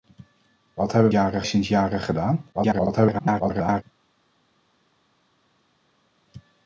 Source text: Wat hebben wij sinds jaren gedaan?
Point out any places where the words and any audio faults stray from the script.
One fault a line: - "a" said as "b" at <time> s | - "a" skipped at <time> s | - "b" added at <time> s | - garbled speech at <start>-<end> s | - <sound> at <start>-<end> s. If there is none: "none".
- "wij" said as "jaren" at 1.1 s
- garbled speech at 2.5-3.8 s